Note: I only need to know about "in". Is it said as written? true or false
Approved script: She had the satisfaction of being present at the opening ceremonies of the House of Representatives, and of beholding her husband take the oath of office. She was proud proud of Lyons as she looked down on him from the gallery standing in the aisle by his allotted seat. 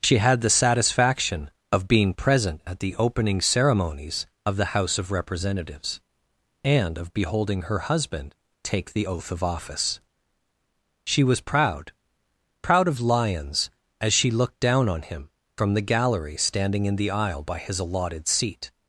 true